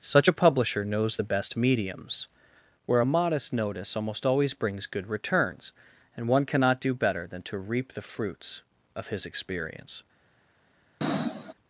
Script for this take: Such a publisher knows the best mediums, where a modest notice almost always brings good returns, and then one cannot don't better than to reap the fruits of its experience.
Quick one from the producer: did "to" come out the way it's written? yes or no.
yes